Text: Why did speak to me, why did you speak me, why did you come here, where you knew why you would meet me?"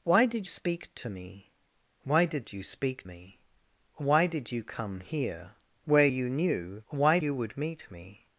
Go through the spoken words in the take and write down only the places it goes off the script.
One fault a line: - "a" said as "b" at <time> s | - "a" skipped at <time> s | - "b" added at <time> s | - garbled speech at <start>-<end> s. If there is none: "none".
none